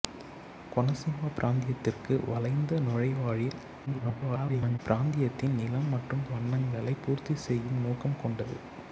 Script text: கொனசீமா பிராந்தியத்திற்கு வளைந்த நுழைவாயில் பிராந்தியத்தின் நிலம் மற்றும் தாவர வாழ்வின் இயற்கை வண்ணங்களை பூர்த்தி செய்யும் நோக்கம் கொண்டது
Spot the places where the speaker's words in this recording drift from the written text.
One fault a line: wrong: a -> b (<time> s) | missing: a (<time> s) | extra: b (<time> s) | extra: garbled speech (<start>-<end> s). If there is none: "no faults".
extra: garbled speech (3.9-4.8 s)
missing: தாவர வாழ்வின் இயற்கை (6.2 s)